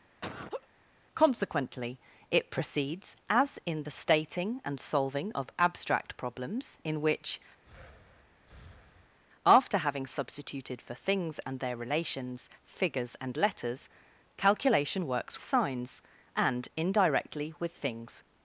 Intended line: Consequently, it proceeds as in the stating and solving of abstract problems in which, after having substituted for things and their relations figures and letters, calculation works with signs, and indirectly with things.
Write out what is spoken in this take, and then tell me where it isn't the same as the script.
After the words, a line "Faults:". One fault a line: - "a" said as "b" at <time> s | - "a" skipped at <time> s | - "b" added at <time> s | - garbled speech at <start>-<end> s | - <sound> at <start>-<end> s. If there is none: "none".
Consequently, it proceeds as in the stating and solving of abstract problems in which, after having substituted for things and their relations figures and letters, calculation works signs, and indirectly with things.
Faults:
- laugh at 0.2-0.7 s
- breath at 7.6-9.2 s
- "with" skipped at 15.4 s